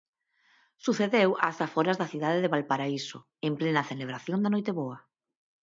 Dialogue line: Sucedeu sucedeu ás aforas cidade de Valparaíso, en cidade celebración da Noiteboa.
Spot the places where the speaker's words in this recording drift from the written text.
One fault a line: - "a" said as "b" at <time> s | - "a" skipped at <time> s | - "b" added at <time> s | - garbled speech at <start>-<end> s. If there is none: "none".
- "sucedeu" skipped at 1.3 s
- "da" added at 2.0 s
- "cidade" said as "plena" at 3.6 s